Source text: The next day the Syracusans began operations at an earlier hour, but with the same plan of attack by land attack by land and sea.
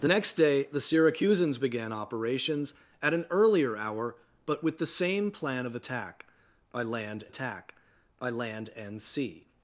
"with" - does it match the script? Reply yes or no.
yes